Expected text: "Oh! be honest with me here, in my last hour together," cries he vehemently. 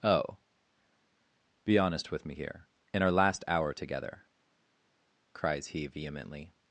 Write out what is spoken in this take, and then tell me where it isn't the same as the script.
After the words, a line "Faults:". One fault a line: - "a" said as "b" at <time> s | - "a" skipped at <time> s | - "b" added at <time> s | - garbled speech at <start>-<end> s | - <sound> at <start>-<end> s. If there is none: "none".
"Oh! be honest with me here, in our last hour together," cries he vehemently.
Faults:
- "my" said as "our" at 3.0 s